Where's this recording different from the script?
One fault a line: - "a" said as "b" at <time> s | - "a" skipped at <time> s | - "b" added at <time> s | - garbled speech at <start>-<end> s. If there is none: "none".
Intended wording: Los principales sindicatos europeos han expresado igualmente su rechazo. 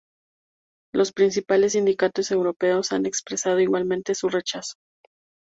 none